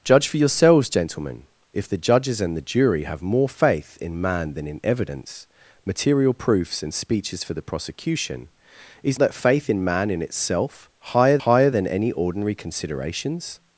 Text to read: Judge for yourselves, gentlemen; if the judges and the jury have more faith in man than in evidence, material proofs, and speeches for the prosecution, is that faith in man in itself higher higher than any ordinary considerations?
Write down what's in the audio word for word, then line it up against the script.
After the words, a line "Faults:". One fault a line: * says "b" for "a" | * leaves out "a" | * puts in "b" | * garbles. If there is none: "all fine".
Judge for yourselves, gentlemen; if the judges and the jury have more faith in man than in evidence, material proofs, and speeches for the prosecution, is that faith in man in itself higher higher than any ordinary considerations?
Faults:
all fine